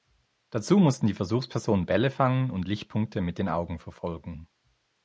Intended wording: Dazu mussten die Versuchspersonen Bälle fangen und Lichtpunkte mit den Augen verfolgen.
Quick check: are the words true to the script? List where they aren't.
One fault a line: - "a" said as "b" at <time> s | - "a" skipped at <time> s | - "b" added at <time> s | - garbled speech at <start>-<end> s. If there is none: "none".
none